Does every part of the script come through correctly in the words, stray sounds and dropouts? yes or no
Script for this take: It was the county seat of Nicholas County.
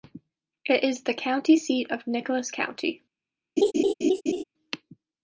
no